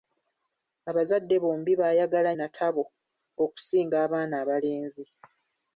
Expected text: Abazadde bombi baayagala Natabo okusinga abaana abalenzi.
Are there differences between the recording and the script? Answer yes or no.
no